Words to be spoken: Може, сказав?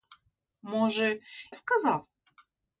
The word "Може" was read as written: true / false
true